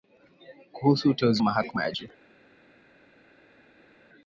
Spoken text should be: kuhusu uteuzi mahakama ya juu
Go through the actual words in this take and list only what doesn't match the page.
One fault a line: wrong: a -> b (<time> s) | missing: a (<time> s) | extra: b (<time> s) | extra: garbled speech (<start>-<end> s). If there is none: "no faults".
no faults